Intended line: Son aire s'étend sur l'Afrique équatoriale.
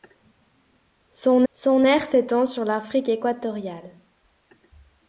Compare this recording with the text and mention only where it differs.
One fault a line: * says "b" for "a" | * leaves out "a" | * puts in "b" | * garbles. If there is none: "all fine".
* puts in "son"